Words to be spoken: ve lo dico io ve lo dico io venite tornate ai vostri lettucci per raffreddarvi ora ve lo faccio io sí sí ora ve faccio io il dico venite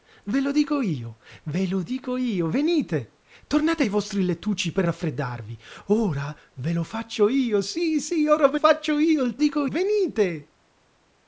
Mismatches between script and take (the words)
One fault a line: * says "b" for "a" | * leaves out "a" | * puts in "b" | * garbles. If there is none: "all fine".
all fine